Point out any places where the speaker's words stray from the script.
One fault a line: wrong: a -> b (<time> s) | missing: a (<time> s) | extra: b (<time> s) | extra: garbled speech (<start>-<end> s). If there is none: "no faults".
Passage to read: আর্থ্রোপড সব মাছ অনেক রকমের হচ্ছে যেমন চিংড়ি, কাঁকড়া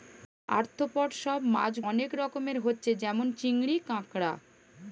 no faults